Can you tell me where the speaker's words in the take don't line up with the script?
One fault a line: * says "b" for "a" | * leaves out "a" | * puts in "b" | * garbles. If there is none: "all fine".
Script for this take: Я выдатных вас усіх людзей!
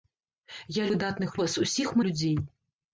all fine